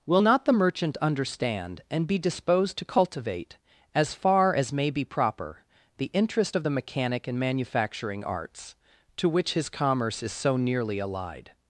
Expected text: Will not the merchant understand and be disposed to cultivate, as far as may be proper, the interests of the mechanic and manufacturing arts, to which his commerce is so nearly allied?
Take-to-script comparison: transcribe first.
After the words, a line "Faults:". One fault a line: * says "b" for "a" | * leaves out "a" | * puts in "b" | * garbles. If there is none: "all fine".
Will not the merchant understand and be disposed to cultivate, as far as may be proper, the interest of the mechanic and manufacturing arts, to which his commerce is so nearly allied?
Faults:
* says "interest" for "interests"